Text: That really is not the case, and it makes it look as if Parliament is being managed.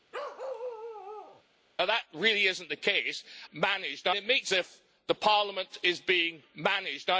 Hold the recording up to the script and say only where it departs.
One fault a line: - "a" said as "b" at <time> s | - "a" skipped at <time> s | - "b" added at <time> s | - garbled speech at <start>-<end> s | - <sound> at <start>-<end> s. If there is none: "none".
- bark at 0.1-1.4 s
- "and" said as "managed" at 3.5 s
- "it look as" skipped at 4.5 s